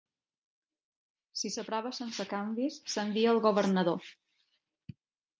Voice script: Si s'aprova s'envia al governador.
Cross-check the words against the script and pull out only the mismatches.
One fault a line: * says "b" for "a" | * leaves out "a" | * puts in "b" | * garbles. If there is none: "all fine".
* puts in "sense canvis"